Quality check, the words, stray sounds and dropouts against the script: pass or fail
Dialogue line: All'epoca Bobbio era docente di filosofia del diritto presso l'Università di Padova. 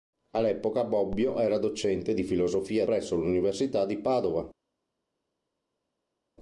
fail